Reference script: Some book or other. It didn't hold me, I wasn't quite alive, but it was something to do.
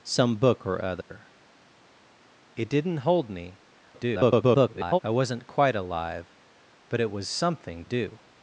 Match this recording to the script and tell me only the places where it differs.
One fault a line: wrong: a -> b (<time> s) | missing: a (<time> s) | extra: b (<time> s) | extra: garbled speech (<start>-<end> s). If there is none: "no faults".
extra: garbled speech (3.9-5.0 s)
missing: to (7.8 s)